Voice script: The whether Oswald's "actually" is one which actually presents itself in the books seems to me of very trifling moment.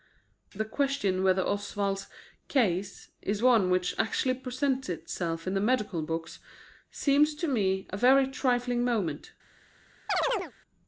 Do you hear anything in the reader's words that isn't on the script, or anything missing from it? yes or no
yes